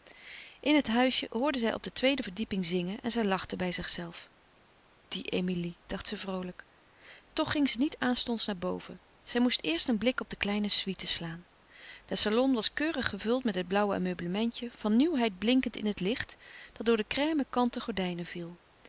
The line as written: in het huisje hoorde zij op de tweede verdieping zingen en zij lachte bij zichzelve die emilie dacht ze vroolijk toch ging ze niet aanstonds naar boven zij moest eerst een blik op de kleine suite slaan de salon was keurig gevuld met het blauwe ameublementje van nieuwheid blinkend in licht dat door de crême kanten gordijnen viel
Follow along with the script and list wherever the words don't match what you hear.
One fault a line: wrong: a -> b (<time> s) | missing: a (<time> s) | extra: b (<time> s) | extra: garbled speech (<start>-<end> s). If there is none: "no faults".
extra: het (15.9 s)